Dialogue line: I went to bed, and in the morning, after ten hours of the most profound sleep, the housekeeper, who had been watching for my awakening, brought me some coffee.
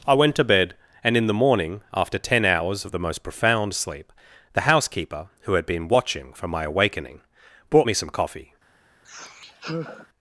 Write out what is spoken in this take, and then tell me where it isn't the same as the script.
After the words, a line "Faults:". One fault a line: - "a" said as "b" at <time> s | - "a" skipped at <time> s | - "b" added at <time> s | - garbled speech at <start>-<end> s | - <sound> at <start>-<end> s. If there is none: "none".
I went to bed, and in the morning, after ten hours of the most profound sleep, the housekeeper, who had been watching for my awakening, brought me some coffee.
Faults:
- sigh at 9.0-10.1 s